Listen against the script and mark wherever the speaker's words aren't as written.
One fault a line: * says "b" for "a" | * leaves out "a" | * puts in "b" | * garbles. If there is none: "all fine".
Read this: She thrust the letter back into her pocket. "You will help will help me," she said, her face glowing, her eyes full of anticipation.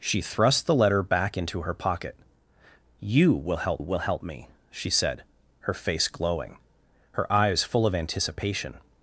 all fine